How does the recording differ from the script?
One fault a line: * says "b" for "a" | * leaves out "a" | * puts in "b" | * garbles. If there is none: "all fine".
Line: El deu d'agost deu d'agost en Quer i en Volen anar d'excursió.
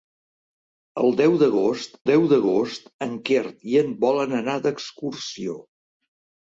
all fine